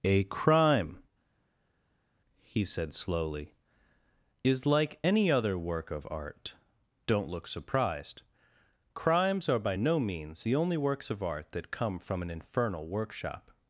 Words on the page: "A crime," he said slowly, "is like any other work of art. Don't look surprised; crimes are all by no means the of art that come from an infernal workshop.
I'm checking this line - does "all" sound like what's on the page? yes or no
no